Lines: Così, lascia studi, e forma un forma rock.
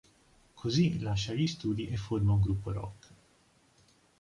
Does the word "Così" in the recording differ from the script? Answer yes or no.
no